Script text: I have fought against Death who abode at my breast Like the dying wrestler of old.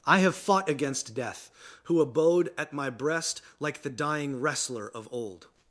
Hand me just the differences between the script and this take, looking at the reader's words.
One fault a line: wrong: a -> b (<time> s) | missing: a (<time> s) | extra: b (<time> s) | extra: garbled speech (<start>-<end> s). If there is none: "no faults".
no faults